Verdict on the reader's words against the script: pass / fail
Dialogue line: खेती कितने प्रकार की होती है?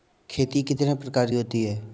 fail